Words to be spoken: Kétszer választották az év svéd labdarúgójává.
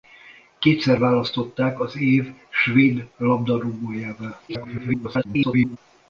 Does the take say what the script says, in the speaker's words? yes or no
no